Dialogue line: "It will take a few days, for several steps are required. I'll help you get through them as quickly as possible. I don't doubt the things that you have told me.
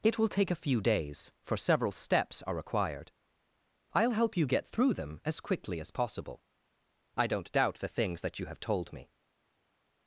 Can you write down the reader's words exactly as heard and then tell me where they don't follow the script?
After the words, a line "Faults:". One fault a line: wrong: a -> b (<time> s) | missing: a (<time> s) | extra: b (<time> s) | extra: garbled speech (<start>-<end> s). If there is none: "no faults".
"It will take a few days, for several steps are required. I'll help you get through them as quickly as possible. I don't doubt the things that you have told me.
Faults:
no faults